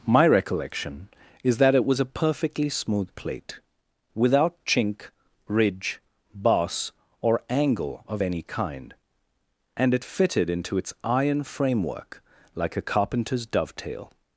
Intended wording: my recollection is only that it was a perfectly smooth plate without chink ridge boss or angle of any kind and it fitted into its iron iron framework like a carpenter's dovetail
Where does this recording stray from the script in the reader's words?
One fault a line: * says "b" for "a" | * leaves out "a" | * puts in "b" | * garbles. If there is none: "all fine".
* leaves out "only"
* leaves out "iron"